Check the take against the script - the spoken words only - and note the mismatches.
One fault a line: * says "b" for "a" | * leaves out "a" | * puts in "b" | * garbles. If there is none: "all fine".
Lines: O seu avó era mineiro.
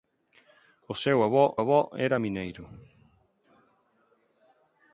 * puts in "avó"